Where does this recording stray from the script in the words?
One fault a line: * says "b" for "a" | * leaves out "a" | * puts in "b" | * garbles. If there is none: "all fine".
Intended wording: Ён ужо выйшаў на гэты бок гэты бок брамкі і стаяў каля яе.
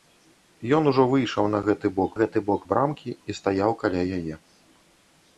all fine